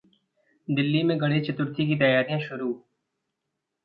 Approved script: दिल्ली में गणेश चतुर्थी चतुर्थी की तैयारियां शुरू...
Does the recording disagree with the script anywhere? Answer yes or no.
yes